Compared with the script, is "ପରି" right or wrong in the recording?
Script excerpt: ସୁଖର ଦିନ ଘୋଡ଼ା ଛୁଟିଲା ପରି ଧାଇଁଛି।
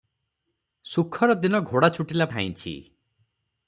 wrong